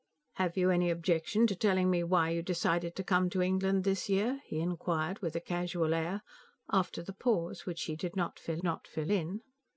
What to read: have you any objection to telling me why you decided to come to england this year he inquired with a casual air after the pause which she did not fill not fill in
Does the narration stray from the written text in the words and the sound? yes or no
no